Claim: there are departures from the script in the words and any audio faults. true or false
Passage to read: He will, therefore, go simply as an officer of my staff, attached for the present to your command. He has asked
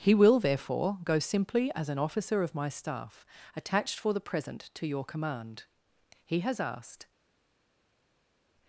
false